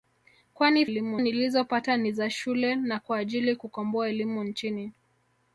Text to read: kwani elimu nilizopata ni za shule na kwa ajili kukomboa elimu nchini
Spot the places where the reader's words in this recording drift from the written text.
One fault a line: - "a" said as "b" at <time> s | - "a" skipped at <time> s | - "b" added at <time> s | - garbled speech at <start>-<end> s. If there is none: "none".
none